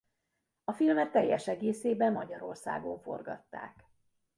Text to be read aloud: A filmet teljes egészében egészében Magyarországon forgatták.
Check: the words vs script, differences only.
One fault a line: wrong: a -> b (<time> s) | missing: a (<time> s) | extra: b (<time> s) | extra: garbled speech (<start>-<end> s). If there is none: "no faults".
missing: egészében (2.1 s)